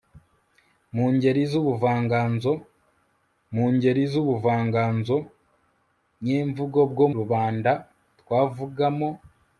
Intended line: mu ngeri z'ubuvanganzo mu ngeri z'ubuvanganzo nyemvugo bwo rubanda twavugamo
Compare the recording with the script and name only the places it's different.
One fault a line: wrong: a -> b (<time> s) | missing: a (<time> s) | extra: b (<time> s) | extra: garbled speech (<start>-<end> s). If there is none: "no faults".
no faults